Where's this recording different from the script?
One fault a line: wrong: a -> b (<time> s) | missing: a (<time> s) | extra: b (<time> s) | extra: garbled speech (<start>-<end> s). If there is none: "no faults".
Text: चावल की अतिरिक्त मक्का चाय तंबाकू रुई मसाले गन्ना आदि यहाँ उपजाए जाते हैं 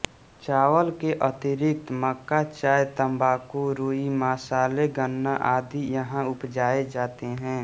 wrong: की -> के (1.0 s)